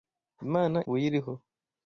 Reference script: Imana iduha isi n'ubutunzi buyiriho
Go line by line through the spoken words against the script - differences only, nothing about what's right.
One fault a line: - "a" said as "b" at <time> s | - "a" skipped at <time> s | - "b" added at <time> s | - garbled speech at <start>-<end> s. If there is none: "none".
- "iduha isi n'ubutunzi" skipped at 0.8 s